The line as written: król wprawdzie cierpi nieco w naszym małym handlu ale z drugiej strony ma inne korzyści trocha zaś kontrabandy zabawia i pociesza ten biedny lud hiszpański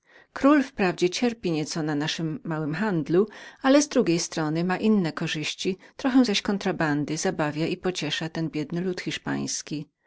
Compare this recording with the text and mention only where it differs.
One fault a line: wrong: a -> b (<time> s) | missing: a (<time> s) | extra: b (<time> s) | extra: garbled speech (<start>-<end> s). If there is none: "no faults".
wrong: w -> na (1.8 s)